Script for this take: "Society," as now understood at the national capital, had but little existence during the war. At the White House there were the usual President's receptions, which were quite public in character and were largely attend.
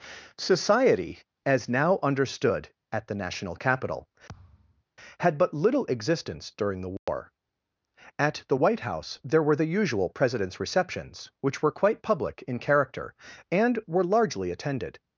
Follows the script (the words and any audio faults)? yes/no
no